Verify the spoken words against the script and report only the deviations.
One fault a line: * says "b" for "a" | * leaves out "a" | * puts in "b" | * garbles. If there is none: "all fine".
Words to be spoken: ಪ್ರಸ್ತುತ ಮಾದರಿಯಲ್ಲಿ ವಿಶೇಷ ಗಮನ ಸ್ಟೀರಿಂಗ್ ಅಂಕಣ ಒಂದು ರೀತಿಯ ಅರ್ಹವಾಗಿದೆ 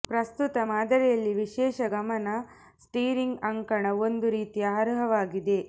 all fine